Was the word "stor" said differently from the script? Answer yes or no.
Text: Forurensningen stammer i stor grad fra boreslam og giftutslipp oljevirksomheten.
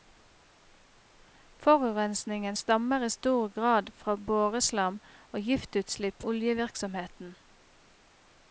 no